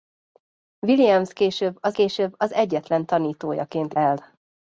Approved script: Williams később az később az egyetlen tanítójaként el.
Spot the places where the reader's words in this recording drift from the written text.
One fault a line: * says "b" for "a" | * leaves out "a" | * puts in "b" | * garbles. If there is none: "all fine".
all fine